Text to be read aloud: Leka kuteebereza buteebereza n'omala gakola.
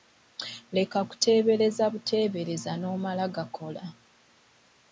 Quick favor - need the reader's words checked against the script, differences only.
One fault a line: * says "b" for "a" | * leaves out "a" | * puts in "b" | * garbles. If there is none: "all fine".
all fine